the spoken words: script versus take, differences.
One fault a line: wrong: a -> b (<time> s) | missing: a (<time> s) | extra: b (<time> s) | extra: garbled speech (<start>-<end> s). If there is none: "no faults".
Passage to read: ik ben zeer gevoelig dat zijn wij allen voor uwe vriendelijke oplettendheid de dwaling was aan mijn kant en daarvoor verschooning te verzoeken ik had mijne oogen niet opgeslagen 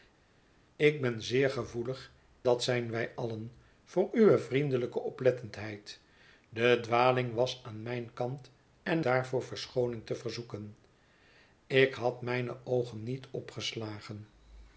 no faults